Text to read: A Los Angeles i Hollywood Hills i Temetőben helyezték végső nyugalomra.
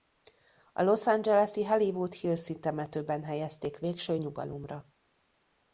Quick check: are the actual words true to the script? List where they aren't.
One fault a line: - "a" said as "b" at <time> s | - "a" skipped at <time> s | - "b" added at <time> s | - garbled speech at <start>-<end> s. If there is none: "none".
none